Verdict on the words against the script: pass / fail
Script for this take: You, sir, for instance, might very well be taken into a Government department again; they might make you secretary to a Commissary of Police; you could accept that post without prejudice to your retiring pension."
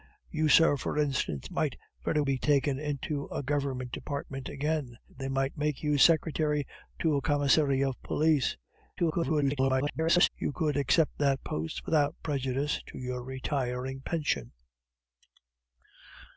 fail